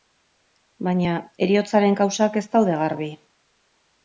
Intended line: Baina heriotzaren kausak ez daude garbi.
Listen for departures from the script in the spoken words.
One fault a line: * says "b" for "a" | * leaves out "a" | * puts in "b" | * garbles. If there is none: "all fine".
all fine